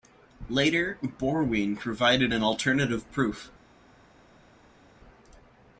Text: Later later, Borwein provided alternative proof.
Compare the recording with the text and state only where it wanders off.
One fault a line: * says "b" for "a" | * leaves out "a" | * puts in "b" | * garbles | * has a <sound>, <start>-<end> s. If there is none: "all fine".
* leaves out "later"
* puts in "an"